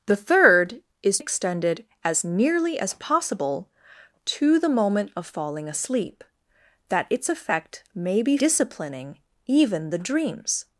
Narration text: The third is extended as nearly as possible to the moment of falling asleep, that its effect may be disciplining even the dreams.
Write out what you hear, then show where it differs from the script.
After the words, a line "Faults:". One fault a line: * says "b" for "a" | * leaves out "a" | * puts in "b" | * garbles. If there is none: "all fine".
The third is extended as nearly as possible to the moment of falling asleep, that its effect may be disciplining even the dreams.
Faults:
all fine